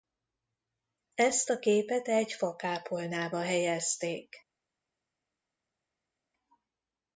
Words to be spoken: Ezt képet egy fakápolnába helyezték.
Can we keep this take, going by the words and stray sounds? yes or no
no